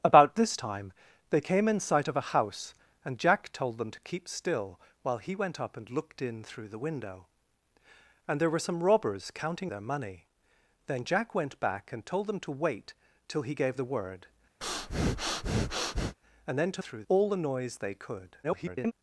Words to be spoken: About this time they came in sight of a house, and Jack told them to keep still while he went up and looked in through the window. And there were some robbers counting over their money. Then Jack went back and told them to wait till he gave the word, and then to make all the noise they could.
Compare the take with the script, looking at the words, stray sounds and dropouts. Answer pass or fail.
fail